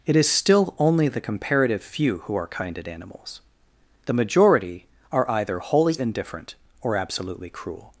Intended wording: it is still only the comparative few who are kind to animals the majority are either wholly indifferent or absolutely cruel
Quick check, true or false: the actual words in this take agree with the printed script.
false